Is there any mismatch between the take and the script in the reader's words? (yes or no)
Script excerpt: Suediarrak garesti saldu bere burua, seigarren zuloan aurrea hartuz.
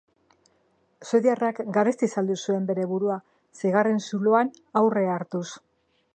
yes